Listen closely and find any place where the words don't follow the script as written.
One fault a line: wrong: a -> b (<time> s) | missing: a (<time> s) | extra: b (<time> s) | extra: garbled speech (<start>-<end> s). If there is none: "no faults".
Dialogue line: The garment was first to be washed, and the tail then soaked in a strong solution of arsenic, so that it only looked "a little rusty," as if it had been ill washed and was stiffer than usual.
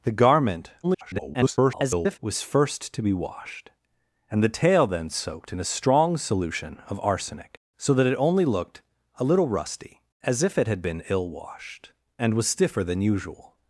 extra: garbled speech (0.8-2.2 s)